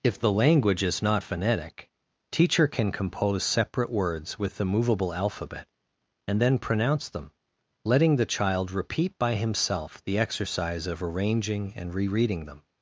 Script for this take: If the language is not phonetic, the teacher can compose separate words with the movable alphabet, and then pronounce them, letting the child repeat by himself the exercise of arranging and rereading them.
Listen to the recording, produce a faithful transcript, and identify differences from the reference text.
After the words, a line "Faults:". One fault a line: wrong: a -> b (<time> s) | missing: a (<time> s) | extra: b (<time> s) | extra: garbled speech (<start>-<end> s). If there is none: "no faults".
If the language is not phonetic, teacher can compose separate words with the movable alphabet, and then pronounce them, letting the child repeat by himself the exercise of arranging and rereading them.
Faults:
missing: the (1.9 s)